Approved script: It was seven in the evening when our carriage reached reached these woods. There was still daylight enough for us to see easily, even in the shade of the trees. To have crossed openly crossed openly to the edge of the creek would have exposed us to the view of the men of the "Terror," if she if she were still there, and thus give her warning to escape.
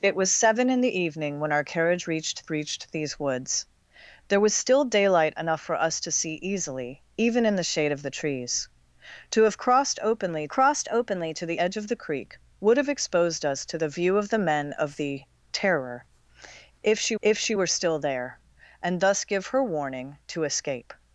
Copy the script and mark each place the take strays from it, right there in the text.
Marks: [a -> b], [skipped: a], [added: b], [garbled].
It was seven in the evening when our carriage reached reached these woods. There was still daylight enough for us to see easily, even in the shade of the trees. To have crossed openly crossed openly to the edge of the creek would have exposed us to the view of the men of the "Terror," if she if she were still there, and thus give her warning to escape.